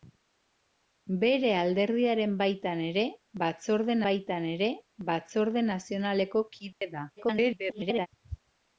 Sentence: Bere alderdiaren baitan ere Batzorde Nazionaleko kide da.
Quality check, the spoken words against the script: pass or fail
fail